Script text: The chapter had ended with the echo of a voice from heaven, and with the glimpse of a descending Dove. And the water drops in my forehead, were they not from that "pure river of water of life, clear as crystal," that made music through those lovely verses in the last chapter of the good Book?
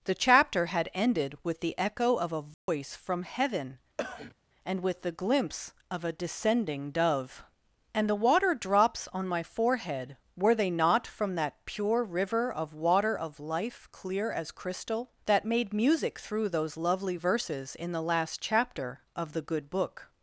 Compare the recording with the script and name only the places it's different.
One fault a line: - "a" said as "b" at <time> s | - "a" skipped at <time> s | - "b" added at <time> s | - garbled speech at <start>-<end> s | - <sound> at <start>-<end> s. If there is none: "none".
- dropout at 2.5-2.7 s
- cough at 4.0-4.4 s
- "in" said as "on" at 9.1 s